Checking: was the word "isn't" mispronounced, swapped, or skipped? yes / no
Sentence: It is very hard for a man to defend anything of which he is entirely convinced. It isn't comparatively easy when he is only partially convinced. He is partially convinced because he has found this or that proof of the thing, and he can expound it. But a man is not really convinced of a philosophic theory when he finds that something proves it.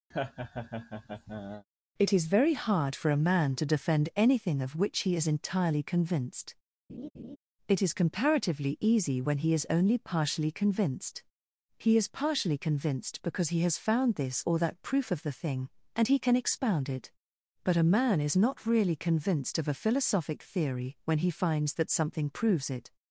yes